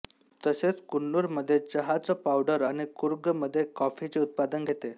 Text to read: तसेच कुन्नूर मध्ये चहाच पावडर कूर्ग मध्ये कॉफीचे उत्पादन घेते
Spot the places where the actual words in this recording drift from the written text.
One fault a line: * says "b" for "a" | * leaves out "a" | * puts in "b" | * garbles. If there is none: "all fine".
* puts in "आणि"